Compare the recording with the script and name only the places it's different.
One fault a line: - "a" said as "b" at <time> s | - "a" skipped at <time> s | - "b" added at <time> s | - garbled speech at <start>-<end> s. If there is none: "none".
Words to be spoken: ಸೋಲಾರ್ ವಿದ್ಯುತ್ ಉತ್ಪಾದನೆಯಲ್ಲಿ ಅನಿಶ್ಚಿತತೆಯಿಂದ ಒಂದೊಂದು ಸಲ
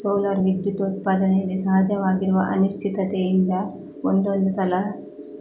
- "ಸಹಜವಾಗಿರುವ" added at 1.6 s